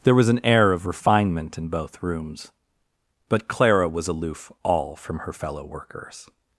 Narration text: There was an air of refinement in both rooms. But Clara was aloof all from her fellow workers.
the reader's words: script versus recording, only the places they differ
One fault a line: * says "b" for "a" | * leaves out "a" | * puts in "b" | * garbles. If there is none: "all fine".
all fine